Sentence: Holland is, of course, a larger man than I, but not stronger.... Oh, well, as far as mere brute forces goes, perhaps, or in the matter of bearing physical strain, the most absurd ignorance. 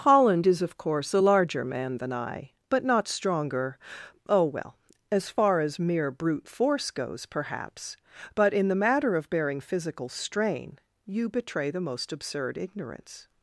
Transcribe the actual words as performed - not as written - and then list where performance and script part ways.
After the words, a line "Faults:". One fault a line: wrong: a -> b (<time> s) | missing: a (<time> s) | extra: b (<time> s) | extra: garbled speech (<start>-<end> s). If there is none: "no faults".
Holland is, of course, a larger man than I, but not stronger.... Oh, well, as far as mere brute force goes, perhaps, but in the matter of bearing physical strain, you betray the most absurd ignorance.
Faults:
wrong: forces -> force (6.5 s)
wrong: or -> but (8.3 s)
extra: you betray (11.0 s)